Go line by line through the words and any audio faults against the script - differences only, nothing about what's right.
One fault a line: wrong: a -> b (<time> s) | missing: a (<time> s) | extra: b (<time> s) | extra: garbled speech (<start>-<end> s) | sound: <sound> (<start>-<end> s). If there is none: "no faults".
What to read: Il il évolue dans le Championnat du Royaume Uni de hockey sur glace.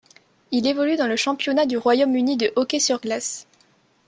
missing: il (0.7 s)